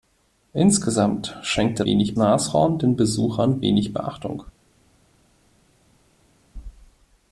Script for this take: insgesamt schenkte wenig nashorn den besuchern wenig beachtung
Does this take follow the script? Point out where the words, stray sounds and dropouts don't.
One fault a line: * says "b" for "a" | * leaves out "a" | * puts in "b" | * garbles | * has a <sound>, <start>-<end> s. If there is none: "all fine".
all fine